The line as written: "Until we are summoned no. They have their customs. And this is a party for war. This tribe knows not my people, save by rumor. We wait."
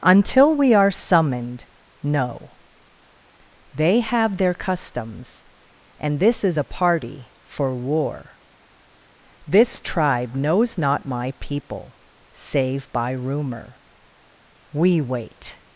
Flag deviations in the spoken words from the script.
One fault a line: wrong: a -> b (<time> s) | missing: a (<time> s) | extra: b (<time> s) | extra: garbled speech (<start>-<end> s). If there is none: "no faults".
no faults